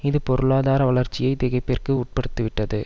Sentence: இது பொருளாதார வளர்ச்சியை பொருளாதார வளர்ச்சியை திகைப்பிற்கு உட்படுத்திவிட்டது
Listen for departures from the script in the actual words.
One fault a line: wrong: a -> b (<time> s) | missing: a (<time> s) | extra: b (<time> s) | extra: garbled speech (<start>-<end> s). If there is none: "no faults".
missing: பொருளாதார வளர்ச்சியை (1.3 s)